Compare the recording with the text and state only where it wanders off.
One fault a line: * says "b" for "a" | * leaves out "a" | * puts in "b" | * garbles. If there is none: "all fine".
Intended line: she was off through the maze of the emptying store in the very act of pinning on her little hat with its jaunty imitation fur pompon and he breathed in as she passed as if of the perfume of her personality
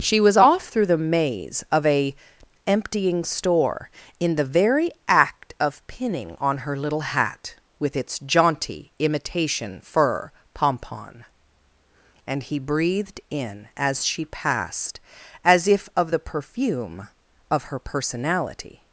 * says "a" for "the"